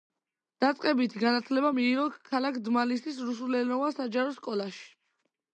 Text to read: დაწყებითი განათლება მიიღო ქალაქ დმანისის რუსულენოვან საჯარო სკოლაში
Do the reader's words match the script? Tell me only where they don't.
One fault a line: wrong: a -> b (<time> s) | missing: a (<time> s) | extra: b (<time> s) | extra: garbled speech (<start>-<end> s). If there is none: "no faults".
no faults